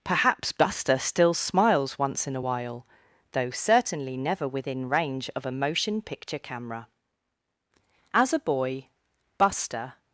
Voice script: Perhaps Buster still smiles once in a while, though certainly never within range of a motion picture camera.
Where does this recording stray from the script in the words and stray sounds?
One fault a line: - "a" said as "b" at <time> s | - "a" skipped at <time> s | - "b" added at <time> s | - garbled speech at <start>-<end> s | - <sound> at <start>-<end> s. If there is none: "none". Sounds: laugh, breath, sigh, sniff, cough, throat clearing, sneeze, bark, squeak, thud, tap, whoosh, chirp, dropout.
- "As a boy Buster" added at 8.1 s